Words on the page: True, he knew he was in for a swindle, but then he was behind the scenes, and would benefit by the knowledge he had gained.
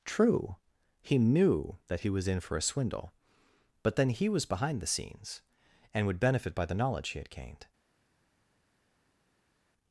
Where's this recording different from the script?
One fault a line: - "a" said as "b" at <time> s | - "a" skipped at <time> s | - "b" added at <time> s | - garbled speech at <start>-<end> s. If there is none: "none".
- "that" added at 1.9 s